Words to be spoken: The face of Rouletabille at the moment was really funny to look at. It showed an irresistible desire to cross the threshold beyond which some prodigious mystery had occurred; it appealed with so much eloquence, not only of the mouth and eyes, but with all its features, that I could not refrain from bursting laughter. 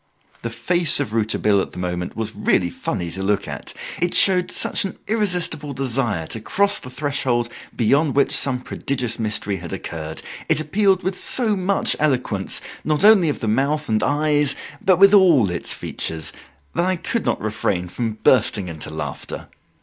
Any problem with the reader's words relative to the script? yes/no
yes